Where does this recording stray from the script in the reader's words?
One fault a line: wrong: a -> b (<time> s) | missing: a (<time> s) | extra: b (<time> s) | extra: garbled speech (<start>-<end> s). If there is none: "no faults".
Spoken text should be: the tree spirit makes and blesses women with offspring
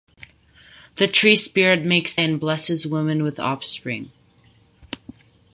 no faults